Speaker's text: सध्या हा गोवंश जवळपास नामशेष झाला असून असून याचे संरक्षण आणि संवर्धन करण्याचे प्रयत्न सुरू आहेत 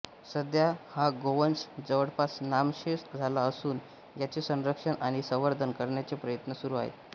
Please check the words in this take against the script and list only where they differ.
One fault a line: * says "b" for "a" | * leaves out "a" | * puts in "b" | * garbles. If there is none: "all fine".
* leaves out "असून"